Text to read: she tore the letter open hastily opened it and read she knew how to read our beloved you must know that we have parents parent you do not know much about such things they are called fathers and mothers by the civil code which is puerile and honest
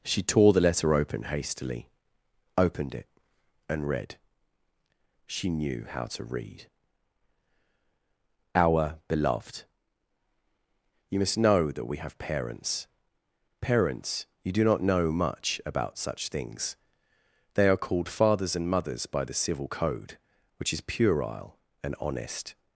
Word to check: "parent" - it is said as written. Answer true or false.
false